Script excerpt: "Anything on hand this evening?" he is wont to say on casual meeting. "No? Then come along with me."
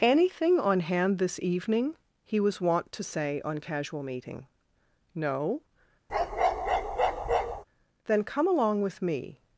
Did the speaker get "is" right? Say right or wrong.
wrong